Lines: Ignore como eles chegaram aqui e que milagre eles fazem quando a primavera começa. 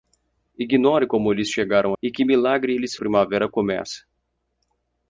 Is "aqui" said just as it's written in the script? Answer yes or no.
no